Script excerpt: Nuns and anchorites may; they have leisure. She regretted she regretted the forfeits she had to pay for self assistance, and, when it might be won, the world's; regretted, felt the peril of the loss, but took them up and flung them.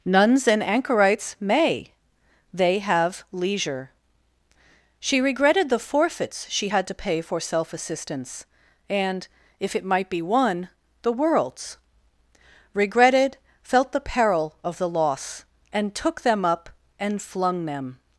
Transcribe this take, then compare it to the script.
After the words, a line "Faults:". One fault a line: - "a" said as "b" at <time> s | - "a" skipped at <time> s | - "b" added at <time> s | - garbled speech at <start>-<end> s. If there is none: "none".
Nuns and anchorites may; they have leisure. She regretted the forfeits she had to pay for self assistance, and, if it might be won, the world's; regretted, felt the peril of the loss, and took them up and flung them.
Faults:
- "she regretted" skipped at 5.7 s
- "when" said as "if" at 9.6 s
- "but" said as "and" at 15.7 s